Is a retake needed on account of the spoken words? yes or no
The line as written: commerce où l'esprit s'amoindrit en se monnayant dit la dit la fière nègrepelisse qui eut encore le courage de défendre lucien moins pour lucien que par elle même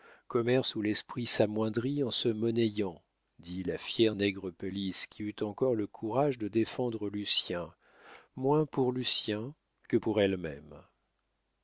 yes